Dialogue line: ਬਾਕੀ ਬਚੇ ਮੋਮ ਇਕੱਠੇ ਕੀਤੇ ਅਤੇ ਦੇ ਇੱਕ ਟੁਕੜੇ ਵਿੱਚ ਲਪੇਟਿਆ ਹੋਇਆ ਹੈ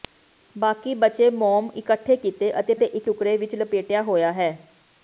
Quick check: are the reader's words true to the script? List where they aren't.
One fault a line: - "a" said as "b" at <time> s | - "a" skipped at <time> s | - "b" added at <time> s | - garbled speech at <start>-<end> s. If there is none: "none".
none